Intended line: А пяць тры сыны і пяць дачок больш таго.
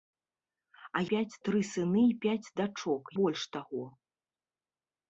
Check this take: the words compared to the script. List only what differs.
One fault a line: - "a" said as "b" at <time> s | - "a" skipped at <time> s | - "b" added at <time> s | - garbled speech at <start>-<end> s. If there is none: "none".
none